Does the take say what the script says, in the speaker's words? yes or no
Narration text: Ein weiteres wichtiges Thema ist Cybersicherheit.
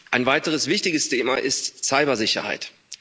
yes